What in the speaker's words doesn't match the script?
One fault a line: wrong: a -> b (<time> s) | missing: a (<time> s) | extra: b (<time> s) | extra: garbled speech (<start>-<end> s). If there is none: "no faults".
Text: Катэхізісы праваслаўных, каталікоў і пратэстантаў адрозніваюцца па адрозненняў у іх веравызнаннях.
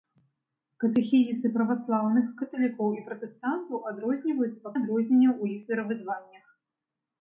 no faults